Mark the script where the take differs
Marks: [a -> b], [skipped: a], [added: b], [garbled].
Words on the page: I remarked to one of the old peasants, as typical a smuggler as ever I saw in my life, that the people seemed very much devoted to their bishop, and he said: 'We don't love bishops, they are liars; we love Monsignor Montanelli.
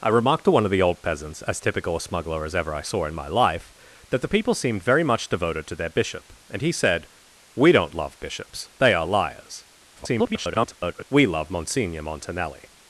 I remarked to one of the old peasants, as typical a smuggler as ever I saw in my life, that the people seemed very much devoted to their bishop, and he said: 'We don't love bishops, they are liars; [garbled] we love Monsignor Montanelli.